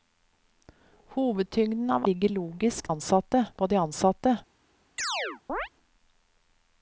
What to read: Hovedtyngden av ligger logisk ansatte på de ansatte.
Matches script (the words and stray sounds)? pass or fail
fail